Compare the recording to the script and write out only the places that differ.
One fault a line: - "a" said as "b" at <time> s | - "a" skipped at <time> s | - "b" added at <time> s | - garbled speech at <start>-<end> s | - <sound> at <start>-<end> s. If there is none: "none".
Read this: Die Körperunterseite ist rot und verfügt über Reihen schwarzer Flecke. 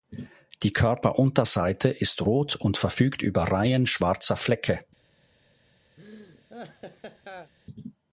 - laugh at 6.0-7.5 s